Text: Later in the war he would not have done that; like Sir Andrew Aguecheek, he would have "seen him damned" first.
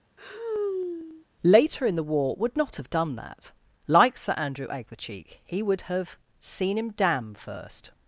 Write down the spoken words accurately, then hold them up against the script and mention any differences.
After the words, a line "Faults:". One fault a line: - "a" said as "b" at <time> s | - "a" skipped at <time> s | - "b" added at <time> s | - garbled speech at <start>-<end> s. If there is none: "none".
Later in the war would not have done that; like Sir Andrew Aguecheek, he would have "seen him damn" first.
Faults:
- "he" skipped at 2.4 s
- "damned" said as "damn" at 6.9 s